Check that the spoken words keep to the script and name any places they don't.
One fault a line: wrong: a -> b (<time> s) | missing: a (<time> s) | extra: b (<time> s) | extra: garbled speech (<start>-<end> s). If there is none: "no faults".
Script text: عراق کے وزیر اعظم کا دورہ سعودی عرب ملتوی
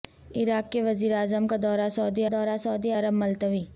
extra: دورہ سعودی (2.3 s)